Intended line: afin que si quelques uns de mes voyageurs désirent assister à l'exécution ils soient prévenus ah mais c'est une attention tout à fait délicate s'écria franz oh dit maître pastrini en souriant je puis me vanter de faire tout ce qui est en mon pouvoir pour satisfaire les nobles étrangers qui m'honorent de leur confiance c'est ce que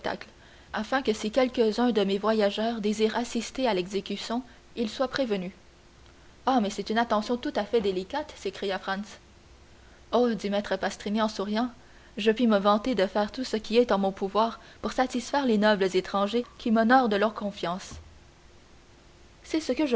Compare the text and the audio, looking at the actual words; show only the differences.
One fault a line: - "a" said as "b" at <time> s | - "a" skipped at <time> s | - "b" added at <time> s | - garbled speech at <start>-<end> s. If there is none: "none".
none